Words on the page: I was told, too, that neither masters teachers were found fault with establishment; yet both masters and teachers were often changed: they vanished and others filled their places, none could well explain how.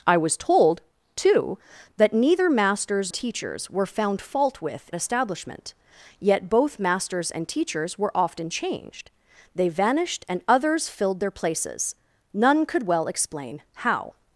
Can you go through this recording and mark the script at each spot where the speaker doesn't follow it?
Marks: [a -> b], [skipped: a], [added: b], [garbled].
I was told, too, that neither masters teachers were found fault with establishment; yet both masters and teachers were often changed: they vanished and others filled their places, none could well explain how.